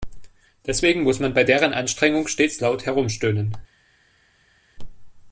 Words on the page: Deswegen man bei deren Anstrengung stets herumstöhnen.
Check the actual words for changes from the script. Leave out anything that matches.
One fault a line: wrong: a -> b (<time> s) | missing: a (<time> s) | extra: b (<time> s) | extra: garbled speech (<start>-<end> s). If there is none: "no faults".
extra: muss (1.0 s)
extra: laut (2.6 s)